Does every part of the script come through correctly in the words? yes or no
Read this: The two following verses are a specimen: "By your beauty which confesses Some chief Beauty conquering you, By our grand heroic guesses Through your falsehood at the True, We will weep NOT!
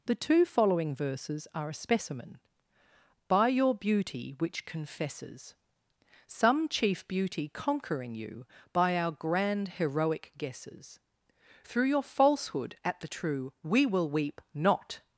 yes